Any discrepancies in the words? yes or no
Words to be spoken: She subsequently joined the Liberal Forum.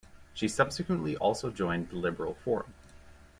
yes